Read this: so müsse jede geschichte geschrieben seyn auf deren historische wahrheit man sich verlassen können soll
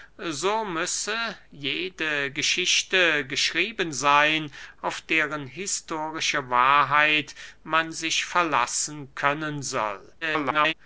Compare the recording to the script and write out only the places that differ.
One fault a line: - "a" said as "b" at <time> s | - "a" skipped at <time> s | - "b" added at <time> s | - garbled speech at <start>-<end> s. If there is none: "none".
- garbled speech at 10.2-10.7 s